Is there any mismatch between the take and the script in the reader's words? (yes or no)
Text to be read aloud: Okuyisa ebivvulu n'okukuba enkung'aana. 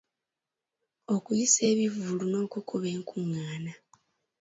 no